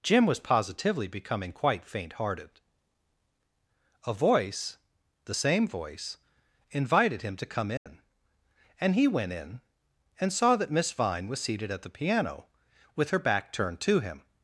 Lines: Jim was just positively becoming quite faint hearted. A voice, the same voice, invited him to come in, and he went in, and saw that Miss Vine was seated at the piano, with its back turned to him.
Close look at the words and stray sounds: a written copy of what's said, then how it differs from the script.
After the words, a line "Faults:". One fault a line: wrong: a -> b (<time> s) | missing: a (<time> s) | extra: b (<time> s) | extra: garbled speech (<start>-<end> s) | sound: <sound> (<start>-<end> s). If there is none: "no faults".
Jim was positively becoming quite faint hearted. A voice, the same voice, invited him to come in, and he went in, and saw that Miss Vine was seated at the piano, with her back turned to him.
Faults:
missing: just (0.4 s)
sound: dropout (7.8-7.9 s)
wrong: its -> her (13.1 s)